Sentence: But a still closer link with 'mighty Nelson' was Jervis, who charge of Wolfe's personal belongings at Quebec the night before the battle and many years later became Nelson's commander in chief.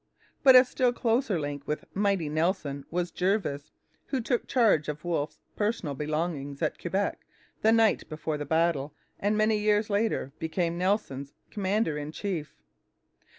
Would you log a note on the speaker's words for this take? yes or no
yes